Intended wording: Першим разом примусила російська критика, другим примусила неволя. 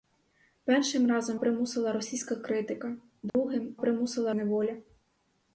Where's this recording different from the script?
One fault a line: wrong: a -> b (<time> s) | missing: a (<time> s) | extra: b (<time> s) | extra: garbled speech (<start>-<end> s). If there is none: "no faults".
no faults